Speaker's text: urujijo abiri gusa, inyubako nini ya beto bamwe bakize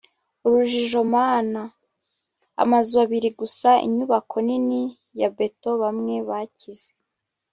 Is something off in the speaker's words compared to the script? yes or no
yes